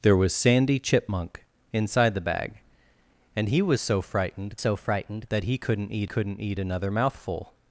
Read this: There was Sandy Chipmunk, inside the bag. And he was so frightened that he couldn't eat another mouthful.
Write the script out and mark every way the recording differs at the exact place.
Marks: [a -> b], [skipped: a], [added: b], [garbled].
There was Sandy Chipmunk, inside the bag. And he was so frightened [added: so frightened] that he couldn't eat [added: couldn't eat] another mouthful.